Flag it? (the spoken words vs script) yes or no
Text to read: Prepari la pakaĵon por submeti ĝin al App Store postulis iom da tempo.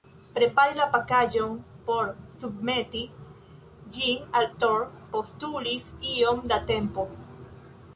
yes